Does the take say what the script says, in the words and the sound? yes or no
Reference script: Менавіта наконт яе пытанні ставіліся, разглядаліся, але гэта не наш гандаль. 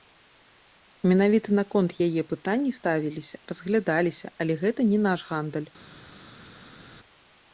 yes